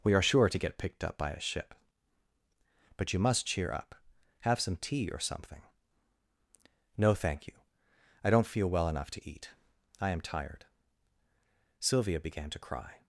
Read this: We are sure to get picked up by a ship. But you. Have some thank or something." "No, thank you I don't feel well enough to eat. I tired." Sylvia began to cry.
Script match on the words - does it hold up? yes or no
no